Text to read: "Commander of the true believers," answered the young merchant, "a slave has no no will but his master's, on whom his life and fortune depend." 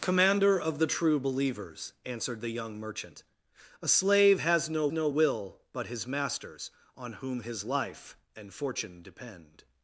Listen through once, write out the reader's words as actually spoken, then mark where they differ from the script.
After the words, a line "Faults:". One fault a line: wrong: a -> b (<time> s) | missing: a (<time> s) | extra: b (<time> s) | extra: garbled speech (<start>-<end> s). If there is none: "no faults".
"Commander of the true believers," answered the young merchant, "a slave has no no will but his master's, on whom his life and fortune depend."
Faults:
no faults